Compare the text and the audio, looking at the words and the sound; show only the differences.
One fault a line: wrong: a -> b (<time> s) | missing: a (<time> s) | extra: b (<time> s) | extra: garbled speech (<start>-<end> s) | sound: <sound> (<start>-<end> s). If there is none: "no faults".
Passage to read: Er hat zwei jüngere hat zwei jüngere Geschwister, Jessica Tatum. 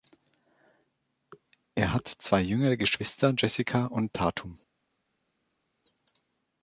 missing: hat zwei jüngere (2.8 s)
extra: und (3.9 s)